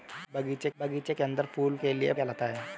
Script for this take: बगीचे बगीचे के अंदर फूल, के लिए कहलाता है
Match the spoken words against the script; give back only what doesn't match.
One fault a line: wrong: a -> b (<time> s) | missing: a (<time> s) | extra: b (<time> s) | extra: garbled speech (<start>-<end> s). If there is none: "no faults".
no faults